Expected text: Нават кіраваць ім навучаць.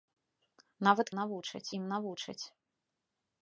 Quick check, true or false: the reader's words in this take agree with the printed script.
false